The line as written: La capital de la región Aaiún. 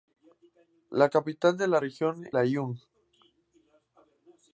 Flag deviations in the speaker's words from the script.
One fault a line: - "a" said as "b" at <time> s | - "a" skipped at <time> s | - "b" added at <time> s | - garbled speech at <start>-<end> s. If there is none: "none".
none